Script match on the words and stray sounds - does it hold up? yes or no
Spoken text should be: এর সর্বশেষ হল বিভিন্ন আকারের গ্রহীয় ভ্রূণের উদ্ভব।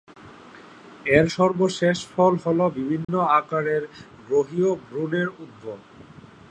no